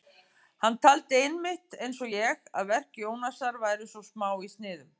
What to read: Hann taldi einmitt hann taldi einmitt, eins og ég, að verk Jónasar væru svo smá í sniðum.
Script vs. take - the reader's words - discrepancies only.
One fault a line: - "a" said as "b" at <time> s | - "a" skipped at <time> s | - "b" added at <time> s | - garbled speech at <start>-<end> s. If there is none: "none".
- "hann taldi einmitt" skipped at 1.8 s